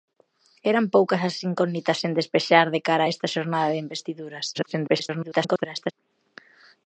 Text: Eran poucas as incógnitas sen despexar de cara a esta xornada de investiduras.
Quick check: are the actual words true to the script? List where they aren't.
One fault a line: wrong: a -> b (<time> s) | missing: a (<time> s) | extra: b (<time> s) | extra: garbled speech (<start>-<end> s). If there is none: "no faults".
extra: garbled speech (4.5-5.9 s)